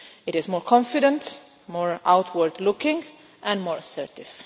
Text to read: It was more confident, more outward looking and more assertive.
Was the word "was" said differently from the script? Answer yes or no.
yes